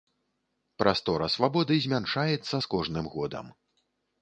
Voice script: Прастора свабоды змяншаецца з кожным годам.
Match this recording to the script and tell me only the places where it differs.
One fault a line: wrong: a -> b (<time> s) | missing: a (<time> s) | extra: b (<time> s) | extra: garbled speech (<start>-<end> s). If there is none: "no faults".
no faults